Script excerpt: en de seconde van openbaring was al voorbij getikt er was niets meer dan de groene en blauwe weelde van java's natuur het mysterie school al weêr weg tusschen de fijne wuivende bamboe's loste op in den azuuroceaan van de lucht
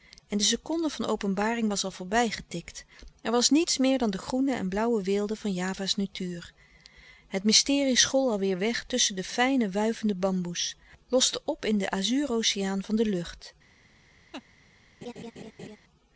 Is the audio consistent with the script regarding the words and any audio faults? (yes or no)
no